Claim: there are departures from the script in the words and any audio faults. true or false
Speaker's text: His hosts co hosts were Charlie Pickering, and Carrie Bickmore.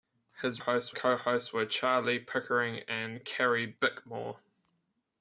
false